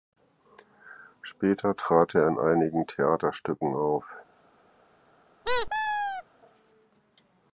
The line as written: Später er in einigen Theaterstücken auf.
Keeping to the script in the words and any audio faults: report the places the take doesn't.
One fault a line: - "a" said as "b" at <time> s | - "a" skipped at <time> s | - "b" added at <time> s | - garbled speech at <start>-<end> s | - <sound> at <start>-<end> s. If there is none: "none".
- "trat" added at 1.8 s
- squeak at 5.4-6.2 s